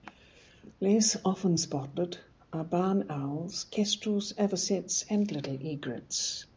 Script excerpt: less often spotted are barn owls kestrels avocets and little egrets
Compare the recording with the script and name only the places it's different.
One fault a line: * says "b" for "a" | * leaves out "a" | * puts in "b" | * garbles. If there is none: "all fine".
all fine